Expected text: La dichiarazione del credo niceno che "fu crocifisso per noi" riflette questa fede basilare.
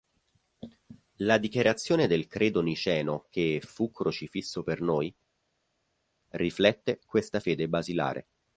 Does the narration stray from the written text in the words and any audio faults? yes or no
no